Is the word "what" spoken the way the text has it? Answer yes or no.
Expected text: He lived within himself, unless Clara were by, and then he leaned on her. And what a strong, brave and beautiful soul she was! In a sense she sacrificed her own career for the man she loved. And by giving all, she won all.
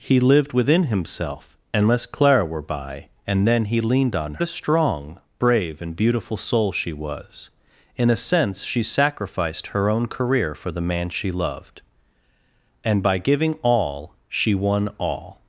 no